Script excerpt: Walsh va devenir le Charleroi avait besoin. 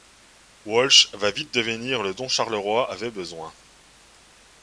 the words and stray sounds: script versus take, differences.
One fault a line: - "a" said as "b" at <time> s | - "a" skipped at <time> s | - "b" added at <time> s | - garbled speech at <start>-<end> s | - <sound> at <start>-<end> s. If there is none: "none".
- "vite" added at 1.3 s
- "dont" added at 2.1 s